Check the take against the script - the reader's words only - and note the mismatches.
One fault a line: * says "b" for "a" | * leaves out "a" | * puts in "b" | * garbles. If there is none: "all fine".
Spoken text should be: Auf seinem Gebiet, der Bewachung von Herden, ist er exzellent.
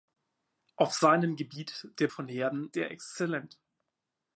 * leaves out "Bewachung"
* leaves out "ist"